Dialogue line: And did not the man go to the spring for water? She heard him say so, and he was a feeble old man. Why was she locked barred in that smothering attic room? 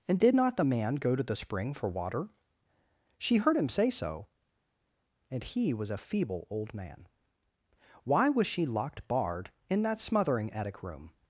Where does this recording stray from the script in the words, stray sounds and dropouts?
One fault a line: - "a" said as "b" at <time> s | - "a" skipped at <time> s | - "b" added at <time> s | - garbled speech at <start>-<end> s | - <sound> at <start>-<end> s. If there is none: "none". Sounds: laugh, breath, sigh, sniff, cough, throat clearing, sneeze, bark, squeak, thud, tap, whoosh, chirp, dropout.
none